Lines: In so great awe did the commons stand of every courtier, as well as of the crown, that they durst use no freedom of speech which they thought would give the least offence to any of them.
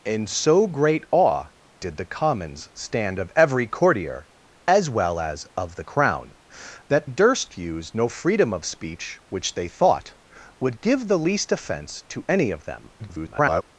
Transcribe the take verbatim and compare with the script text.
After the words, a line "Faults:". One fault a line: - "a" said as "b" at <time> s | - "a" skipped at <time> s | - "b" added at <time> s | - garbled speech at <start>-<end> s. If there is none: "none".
In so great awe did the commons stand of every courtier, as well as of the crown, that durst use no freedom of speech which they thought would give the least offence to any of them. [garbled]
Faults:
- "they" skipped at 7.1 s
- garbled speech at 13.0-13.6 s